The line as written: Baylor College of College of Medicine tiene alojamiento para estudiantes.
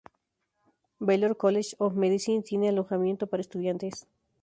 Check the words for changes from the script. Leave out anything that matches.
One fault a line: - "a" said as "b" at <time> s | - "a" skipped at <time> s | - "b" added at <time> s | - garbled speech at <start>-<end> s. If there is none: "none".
- "College of" skipped at 1.9 s